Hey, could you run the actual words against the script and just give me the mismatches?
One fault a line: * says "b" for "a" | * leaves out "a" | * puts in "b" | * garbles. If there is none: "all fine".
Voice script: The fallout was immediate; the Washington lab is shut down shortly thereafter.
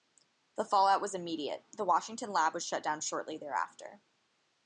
* says "was" for "is"